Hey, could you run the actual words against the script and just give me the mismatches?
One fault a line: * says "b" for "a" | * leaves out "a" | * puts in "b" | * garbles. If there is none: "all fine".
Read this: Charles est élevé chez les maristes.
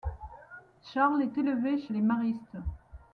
all fine